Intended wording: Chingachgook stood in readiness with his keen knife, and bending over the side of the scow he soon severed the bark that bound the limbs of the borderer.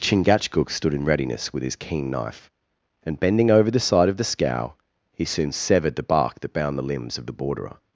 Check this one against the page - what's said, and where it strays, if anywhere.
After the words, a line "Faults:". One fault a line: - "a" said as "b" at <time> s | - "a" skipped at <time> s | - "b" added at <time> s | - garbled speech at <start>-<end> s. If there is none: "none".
Chingachgook stood in readiness with his keen knife, and bending over the side of the scow he soon severed the bark that bound the limbs of the borderer.
Faults:
none